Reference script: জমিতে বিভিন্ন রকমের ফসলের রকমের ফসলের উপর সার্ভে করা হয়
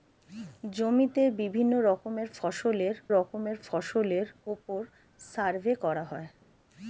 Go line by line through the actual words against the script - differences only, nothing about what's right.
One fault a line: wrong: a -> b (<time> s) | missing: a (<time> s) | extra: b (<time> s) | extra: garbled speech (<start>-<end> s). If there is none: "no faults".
no faults